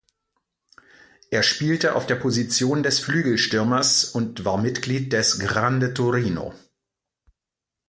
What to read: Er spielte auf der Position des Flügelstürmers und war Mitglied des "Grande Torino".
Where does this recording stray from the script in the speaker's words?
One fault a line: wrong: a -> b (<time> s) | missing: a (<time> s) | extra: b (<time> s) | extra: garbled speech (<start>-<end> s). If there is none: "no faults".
no faults